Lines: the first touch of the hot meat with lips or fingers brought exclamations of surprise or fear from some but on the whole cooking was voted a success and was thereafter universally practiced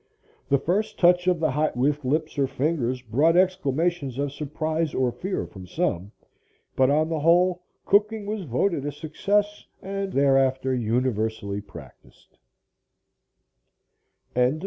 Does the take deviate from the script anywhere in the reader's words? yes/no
yes